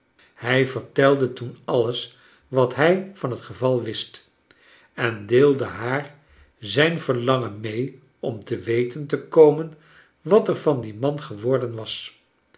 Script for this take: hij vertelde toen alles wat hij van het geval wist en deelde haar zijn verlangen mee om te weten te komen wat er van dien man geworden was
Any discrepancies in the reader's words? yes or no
no